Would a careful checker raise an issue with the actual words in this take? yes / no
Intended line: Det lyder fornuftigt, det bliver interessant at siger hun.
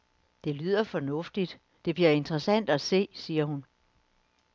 yes